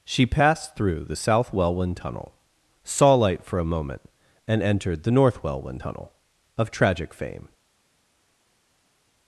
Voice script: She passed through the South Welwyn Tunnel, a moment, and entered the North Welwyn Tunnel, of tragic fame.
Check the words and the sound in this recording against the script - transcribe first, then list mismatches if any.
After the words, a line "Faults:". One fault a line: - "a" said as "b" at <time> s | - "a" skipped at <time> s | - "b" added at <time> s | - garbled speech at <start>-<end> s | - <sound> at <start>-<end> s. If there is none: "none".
She passed through the South Welwyn Tunnel, saw light for a moment, and entered the North Welwyn Tunnel, of tragic fame.
Faults:
- "saw light for" added at 2.8 s